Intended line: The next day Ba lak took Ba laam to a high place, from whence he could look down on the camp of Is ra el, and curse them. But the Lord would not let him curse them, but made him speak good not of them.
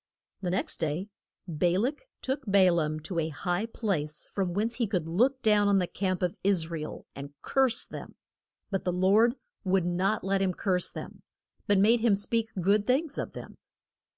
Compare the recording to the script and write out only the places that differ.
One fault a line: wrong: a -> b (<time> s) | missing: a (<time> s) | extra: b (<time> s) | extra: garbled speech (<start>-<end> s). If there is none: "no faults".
wrong: not -> things (12.9 s)